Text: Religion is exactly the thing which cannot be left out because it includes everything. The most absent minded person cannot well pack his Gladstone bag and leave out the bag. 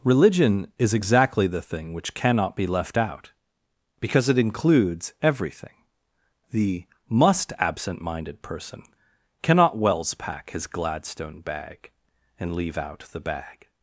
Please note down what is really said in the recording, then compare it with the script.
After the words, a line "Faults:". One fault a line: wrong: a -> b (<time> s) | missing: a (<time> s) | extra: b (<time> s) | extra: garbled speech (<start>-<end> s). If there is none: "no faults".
Religion is exactly the thing which cannot be left out because it includes everything. The must absent minded person cannot wells pack his Gladstone bag and leave out the bag.
Faults:
wrong: most -> must (7.1 s)
wrong: well -> wells (9.8 s)